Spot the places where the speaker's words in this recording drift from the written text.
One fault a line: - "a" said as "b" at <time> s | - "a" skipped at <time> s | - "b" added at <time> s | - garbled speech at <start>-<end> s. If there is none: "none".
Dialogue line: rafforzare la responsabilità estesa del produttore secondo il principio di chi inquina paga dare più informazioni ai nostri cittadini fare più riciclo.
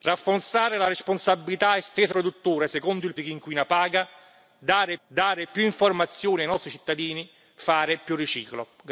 - "del" skipped at 2.1 s
- "principio" skipped at 3.1 s
- "dare" added at 5.1 s